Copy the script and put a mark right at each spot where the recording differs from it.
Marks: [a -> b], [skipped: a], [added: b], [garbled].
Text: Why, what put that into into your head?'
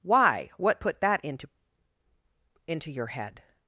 Why, what put that into into your head?'